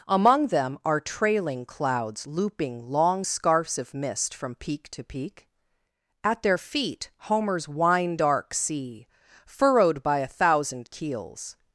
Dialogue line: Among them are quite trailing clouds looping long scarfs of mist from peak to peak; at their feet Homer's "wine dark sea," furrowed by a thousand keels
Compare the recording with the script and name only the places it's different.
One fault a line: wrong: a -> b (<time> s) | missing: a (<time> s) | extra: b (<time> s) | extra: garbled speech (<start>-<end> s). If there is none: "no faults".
missing: quite (1.0 s)